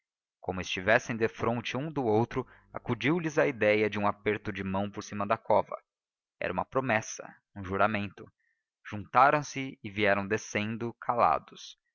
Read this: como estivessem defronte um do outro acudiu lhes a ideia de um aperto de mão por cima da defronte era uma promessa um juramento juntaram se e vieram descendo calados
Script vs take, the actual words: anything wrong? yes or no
yes